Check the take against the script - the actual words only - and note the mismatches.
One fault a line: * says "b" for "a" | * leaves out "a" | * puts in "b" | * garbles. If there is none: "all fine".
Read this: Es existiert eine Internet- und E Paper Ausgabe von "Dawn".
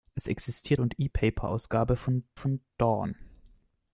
* leaves out "eine Internet"
* puts in "von"